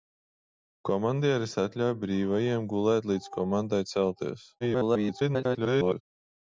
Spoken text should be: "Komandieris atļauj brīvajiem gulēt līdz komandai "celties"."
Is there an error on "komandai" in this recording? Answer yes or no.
no